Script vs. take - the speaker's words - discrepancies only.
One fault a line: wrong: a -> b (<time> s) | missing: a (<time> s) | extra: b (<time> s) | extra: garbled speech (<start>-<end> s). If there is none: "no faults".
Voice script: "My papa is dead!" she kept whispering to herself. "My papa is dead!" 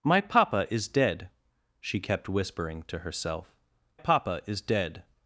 missing: My (3.5 s)